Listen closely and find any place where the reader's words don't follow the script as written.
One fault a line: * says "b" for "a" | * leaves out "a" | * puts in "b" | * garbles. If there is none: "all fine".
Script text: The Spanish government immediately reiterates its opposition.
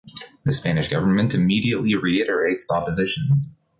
* leaves out "its"